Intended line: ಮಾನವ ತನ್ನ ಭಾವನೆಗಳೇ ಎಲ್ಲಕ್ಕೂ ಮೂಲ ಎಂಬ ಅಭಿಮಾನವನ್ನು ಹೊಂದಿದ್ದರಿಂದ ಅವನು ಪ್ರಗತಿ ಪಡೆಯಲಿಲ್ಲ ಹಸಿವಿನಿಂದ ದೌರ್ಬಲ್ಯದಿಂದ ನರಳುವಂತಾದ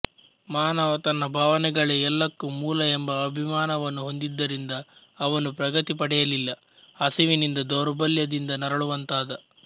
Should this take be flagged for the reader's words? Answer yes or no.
no